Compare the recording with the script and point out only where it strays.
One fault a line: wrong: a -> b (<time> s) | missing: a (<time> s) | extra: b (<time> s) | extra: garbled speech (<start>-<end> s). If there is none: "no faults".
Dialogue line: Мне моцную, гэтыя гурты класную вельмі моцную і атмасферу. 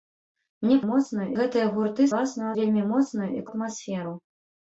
no faults